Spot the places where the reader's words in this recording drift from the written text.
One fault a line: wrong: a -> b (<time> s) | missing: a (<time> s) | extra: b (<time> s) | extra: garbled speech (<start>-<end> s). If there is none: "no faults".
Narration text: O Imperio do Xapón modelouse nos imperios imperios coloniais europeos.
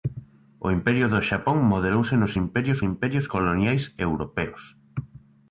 no faults